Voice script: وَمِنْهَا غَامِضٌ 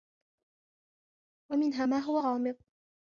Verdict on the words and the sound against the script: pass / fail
fail